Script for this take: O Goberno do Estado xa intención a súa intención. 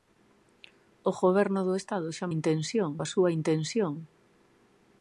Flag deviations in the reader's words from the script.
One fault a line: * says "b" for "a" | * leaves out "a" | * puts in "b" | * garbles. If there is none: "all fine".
all fine